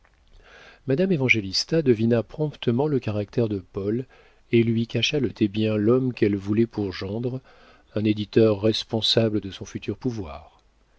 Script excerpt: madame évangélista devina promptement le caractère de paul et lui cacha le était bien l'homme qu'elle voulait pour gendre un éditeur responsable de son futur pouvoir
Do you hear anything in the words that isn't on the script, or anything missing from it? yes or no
no